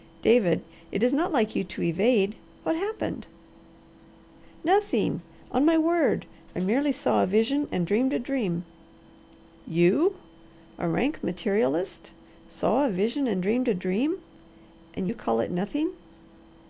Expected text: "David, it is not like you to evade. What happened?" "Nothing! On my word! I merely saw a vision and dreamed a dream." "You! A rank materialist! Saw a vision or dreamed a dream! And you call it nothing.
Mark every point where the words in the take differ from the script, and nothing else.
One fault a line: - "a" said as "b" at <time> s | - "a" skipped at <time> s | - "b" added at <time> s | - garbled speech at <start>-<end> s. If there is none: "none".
- "or" said as "and" at 13.3 s